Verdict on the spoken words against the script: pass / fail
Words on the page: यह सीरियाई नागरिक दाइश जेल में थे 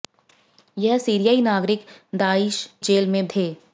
pass